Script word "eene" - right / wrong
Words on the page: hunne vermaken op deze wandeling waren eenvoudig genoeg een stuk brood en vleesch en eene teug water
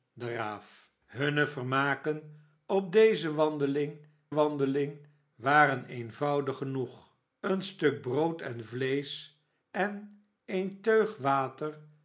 right